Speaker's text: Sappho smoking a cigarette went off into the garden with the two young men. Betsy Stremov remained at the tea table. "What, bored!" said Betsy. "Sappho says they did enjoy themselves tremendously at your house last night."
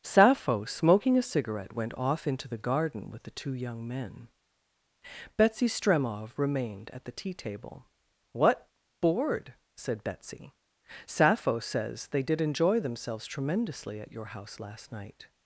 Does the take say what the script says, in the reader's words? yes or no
yes